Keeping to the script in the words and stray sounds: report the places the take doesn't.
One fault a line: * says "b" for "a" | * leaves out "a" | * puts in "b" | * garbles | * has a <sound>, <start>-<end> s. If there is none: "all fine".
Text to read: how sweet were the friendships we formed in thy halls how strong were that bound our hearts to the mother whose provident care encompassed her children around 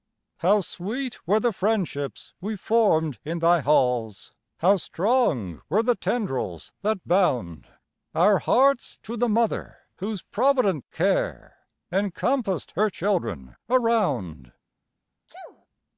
* puts in "the tendrils"
* has a sneeze, 15.3-15.7 s